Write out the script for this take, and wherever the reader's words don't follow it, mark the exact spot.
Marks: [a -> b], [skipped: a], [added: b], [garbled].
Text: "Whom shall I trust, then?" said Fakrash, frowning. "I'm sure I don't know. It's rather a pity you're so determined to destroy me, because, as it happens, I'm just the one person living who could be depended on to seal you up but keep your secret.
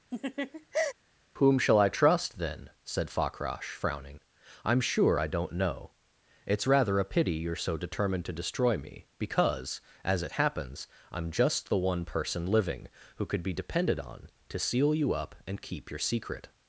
"Whom shall I trust, then?" said Fakrash, frowning. "I'm sure I don't know. It's rather a pity you're so determined to destroy me, because, as it happens, I'm just the one person living who could be depended on to seal you up [but -> and] keep your secret.